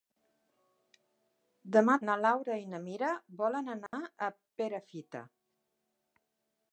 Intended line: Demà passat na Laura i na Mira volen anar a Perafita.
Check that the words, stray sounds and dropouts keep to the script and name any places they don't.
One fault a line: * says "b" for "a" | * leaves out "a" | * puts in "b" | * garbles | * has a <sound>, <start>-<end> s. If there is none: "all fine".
* leaves out "passat"
* has a dropout, 3.9-3.9 s